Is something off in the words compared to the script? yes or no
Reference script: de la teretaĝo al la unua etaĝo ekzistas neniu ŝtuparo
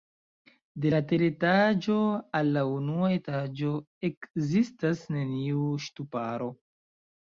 no